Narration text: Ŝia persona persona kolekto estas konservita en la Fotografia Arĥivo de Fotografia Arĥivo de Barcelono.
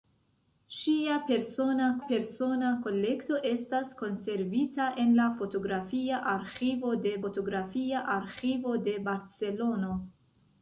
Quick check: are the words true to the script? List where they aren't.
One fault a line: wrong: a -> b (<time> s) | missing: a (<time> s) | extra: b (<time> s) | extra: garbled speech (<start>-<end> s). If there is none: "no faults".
no faults